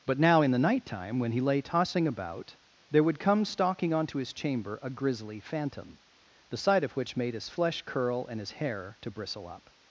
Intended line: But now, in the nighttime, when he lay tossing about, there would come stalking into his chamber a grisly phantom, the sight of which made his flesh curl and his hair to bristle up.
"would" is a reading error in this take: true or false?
false